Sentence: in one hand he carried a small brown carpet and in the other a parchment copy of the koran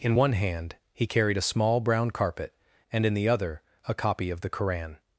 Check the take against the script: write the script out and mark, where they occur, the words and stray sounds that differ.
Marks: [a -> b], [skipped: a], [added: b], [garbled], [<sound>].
in one hand he carried a small brown carpet and in the other a [skipped: parchment] copy of the koran